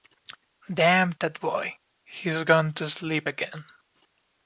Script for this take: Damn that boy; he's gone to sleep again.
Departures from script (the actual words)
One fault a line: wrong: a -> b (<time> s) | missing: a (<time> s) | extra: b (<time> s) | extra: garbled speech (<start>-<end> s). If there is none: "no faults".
no faults